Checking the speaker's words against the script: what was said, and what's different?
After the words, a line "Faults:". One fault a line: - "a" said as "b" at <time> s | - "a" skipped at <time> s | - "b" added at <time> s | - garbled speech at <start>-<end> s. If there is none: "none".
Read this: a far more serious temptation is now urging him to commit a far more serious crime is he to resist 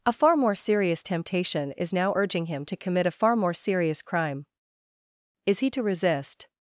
a far more serious temptation is now urging him to commit a far more serious crime is he to resist
Faults:
none